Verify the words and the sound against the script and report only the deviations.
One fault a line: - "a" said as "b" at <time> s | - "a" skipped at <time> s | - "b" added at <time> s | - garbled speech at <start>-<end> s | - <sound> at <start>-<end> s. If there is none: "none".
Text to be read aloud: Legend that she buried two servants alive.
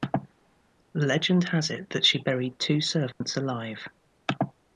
- "has it" added at 1.5 s
- dropout at 3.1-3.2 s